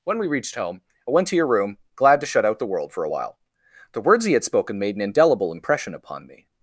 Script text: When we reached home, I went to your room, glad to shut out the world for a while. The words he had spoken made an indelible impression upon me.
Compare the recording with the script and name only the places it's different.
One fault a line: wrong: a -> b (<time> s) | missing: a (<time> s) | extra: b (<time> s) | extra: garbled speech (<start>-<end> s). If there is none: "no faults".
no faults